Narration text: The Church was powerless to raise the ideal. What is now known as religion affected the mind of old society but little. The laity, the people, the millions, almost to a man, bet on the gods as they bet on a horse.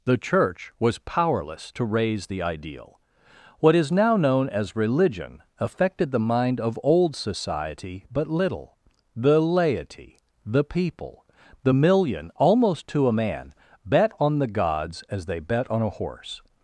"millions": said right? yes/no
no